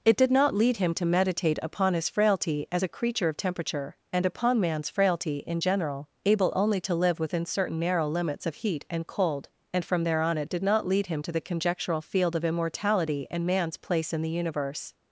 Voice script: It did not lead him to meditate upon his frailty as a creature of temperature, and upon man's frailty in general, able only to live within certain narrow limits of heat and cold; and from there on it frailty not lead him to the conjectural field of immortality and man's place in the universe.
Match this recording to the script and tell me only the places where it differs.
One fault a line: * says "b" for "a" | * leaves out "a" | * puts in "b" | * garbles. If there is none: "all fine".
* says "did" for "frailty"